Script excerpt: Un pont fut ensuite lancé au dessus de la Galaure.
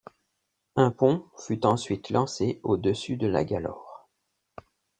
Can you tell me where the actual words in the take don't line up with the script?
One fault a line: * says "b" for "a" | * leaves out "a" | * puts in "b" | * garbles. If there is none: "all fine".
all fine